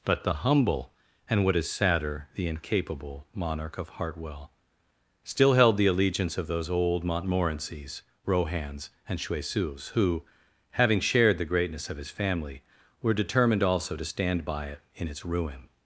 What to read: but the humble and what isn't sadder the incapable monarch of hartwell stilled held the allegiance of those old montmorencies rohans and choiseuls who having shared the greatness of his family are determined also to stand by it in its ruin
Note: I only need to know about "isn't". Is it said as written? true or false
false